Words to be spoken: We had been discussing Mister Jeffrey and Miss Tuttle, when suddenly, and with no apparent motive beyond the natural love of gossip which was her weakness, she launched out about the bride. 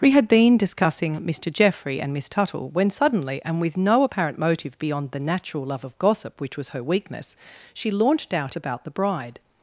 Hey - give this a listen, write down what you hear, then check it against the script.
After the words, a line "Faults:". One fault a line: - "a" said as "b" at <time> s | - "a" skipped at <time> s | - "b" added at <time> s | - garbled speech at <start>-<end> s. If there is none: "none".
We had been discussing Mister Jeffrey and Miss Tuttle, when suddenly, and with no apparent motive beyond the natural love of gossip which was her weakness, she launched out about the bride.
Faults:
none